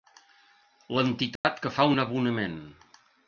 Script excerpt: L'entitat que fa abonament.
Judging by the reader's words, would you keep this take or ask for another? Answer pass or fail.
fail